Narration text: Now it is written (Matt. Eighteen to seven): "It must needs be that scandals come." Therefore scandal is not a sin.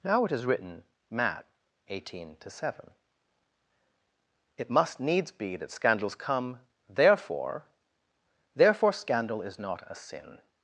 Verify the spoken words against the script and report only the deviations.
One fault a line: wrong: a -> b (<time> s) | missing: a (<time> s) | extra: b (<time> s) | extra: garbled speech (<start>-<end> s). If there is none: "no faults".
extra: Therefore (8.6 s)